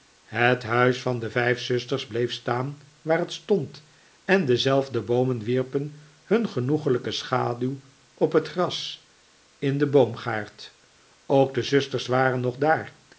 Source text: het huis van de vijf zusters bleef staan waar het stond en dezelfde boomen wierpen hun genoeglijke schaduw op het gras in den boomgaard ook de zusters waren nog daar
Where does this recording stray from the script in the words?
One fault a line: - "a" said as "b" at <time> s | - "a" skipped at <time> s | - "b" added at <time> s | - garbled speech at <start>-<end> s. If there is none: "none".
none